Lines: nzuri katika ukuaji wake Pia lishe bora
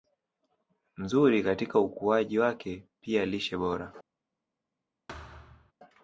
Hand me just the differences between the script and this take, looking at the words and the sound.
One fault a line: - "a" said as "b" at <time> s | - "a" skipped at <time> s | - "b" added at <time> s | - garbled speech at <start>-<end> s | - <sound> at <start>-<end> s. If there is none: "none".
- thud at 5.1-5.7 s